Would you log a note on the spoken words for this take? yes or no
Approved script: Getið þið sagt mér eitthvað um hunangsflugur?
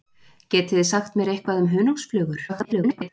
yes